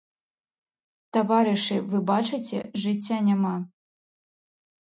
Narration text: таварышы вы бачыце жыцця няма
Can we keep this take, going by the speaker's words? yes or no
yes